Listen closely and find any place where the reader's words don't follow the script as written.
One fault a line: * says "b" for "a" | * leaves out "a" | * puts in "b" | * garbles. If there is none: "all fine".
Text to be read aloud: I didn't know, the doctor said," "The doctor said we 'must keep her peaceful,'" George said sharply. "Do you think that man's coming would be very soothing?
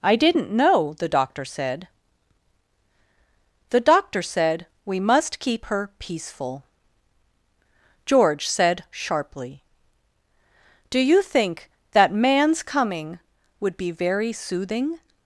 all fine